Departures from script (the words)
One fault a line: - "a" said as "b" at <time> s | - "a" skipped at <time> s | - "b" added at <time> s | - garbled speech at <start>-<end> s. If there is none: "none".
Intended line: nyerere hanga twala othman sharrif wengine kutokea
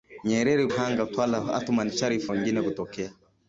none